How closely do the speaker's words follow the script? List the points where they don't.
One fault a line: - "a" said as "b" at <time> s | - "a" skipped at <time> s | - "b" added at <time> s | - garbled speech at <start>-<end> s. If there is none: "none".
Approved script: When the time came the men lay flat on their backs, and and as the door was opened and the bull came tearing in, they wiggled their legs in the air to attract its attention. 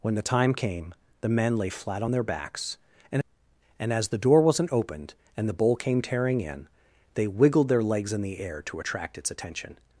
- "was" said as "wasn't" at 4.4 s